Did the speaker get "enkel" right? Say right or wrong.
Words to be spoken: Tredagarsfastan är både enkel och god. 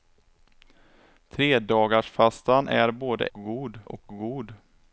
wrong